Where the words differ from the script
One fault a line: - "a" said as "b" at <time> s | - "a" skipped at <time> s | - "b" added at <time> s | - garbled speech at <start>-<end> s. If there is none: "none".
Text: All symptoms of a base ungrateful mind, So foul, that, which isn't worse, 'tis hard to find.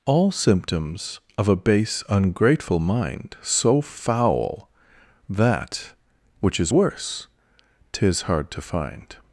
- "isn't" said as "is" at 6.6 s